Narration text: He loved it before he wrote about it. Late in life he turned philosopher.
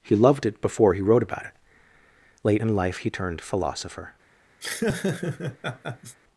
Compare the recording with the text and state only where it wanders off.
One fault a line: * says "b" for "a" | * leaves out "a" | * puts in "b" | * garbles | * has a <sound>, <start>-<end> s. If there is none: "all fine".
* has a laugh, 4.6-6.2 s